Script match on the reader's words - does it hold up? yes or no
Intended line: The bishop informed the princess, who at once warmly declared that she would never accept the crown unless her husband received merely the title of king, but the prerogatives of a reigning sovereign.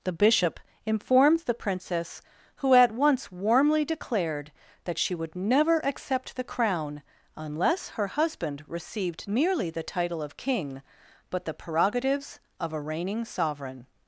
yes